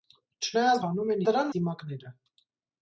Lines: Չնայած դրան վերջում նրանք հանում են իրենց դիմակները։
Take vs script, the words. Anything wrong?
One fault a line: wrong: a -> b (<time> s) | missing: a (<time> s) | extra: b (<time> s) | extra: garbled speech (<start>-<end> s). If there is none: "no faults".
missing: դրան վերջում նրանք (0.8 s)
wrong: իրենց -> դրան (1.3 s)